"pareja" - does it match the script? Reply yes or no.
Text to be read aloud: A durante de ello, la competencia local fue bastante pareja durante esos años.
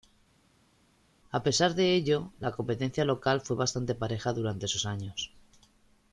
yes